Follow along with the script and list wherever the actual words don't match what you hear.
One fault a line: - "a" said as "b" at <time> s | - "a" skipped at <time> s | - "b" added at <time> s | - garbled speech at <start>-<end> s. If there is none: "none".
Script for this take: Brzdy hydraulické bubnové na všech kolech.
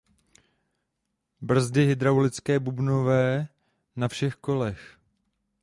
none